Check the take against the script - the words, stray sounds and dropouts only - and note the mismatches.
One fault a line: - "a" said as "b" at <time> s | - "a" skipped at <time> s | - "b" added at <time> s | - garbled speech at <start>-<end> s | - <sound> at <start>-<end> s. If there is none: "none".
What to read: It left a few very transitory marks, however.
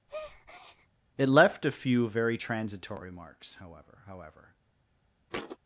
- breath at 0.1-0.9 s
- "however" added at 4.1 s
- thud at 5.3-5.6 s